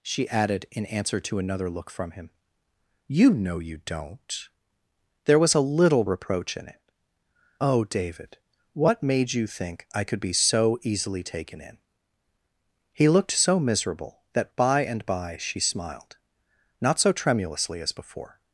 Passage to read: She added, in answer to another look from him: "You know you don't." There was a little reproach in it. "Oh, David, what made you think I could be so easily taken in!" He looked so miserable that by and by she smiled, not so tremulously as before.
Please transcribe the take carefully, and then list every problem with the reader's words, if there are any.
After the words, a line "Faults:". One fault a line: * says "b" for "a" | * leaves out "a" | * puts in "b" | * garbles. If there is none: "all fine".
She added, in answer to another look from him: "You know you don't." There was a little reproach in it. "Oh, David, what made you think I could be so easily taken in!" He looked so miserable that by and by she smiled, not so tremulously as before.
Faults:
all fine